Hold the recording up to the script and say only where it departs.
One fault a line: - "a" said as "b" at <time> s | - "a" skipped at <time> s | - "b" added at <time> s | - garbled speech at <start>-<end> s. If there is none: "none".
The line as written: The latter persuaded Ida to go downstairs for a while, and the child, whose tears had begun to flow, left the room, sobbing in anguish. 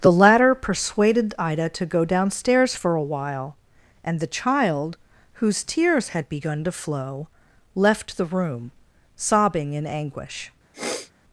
none